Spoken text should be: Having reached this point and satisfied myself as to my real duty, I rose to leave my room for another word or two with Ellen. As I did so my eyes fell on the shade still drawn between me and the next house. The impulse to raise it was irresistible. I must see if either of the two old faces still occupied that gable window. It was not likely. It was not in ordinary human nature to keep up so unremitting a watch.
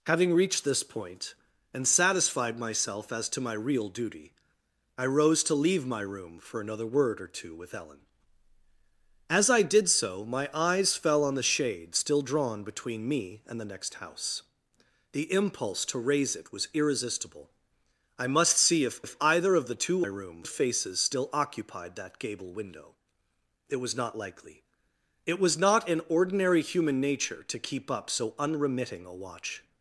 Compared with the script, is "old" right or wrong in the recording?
wrong